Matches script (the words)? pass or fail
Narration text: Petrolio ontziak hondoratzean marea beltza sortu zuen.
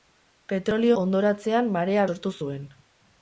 fail